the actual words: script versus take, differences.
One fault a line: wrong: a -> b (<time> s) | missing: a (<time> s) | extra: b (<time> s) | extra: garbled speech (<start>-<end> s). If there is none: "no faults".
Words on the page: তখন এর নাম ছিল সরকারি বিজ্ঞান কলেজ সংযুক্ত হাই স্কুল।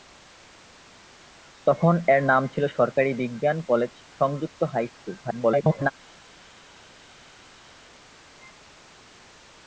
extra: garbled speech (5.2-5.9 s)